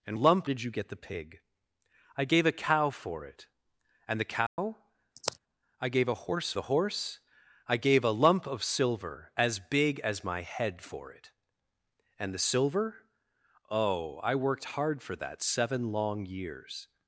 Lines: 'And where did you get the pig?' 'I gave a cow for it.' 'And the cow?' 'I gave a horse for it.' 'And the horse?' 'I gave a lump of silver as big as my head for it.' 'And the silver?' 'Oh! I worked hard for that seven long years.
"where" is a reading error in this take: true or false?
true